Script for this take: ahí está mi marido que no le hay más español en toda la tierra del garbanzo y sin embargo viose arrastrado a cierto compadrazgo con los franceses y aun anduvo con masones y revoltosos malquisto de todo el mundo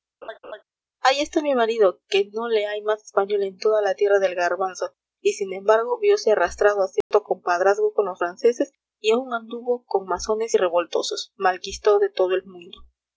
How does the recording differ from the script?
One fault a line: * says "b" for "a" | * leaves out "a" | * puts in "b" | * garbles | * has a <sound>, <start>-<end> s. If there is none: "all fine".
* has a laugh, 0.2-0.6 s
* has a dropout, 7.0-7.1 s